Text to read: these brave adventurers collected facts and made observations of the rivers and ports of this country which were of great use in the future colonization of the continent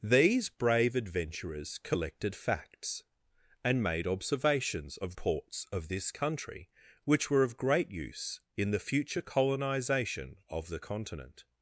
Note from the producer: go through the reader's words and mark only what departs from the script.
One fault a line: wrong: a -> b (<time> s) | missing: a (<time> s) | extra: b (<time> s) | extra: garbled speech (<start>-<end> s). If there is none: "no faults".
missing: the rivers and (5.1 s)